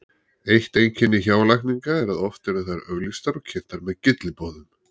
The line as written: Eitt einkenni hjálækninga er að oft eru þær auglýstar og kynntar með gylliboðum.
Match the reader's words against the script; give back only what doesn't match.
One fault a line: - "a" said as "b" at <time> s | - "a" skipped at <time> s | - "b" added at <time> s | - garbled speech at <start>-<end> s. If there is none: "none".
none